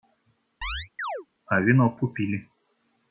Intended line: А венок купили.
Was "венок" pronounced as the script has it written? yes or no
yes